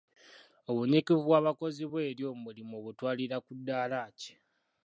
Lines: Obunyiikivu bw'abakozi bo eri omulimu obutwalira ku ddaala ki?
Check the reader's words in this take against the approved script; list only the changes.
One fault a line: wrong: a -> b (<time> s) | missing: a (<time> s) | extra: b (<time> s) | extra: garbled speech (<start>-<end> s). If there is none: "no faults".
no faults